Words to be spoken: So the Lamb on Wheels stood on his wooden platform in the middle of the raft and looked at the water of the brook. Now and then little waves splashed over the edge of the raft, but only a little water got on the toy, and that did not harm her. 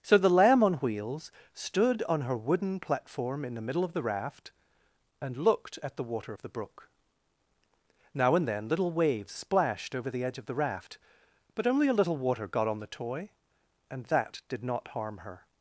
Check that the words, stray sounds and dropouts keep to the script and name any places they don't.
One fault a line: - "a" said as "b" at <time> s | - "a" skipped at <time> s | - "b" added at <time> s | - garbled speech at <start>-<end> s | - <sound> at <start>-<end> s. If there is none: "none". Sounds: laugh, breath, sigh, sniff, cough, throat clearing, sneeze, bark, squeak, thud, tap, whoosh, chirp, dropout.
- "his" said as "her" at 2.2 s